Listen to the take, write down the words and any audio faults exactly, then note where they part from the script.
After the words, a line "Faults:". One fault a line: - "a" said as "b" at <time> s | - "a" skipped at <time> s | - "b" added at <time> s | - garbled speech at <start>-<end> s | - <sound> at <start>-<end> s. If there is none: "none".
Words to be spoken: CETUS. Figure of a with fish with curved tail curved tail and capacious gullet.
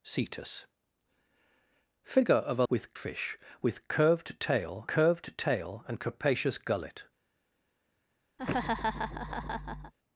CETUS. Figure of a with fish with curved tail curved tail and capacious gullet.
Faults:
- laugh at 8.4-9.9 s